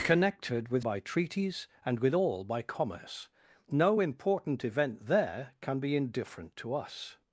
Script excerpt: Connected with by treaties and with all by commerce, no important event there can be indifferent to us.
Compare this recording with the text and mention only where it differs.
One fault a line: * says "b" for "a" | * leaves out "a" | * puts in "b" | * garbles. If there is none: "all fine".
all fine